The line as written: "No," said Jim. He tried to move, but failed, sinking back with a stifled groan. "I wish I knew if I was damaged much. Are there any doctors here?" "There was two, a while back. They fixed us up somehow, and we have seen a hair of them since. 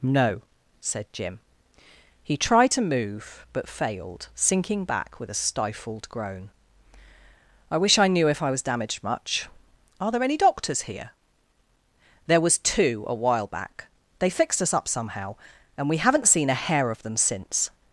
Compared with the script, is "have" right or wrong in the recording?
wrong